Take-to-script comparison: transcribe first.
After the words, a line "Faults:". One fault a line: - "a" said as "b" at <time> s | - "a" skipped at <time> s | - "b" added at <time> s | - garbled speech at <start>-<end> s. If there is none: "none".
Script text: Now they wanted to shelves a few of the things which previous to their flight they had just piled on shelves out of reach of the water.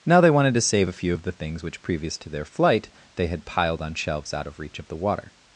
Now they wanted to save a few of the things which previous to their flight they had piled on shelves out of reach of the water.
Faults:
- "shelves" said as "save" at 0.6 s
- "just" skipped at 3.5 s